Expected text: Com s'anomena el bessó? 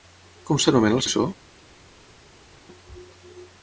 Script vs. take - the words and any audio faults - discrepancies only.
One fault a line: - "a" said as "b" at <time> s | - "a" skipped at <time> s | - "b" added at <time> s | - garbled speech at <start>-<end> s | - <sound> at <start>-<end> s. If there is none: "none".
none